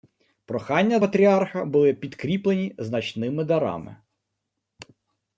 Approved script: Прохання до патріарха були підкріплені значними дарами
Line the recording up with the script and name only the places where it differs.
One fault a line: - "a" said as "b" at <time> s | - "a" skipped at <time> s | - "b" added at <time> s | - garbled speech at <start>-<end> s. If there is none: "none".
- "до" skipped at 1.0 s